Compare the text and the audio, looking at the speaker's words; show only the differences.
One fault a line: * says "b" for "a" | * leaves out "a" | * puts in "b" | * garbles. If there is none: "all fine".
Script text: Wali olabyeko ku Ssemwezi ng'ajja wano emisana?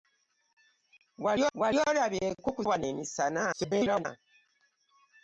* puts in "wali"
* leaves out "Ssemwezi ng'ajja"
* garbles